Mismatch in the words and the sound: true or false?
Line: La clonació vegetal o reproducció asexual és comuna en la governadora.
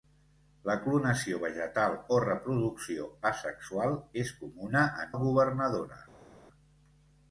false